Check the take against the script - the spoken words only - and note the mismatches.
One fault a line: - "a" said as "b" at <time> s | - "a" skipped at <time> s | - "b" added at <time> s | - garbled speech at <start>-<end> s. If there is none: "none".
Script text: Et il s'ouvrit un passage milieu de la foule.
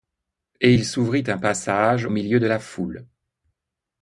none